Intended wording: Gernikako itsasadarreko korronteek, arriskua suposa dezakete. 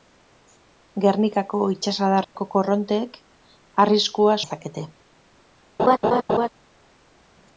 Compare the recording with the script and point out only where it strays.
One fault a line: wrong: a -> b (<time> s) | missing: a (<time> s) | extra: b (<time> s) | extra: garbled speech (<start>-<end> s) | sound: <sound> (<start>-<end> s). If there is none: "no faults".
sound: dropout (2.2-2.4 s)
missing: suposa (4.4 s)
sound: laugh (5.8-6.5 s)